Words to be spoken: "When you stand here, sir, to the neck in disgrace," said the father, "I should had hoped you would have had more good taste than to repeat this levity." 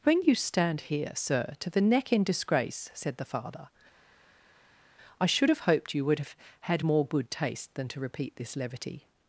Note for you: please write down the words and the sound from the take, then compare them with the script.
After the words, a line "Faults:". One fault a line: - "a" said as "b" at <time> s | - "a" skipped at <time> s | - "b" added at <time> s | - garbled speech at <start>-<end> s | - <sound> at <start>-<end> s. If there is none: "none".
"When you stand here, sir, to the neck in disgrace," said the father, "I should have hoped you would have had more good taste than to repeat this levity."
Faults:
- "had" said as "have" at 5.5 s